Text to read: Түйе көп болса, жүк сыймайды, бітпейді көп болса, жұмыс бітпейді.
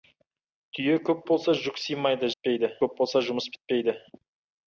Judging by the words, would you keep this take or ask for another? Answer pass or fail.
pass